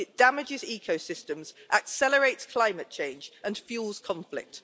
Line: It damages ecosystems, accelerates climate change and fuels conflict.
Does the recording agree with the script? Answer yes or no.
yes